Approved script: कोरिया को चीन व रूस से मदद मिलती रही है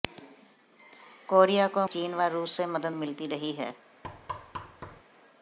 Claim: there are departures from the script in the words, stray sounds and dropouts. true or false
true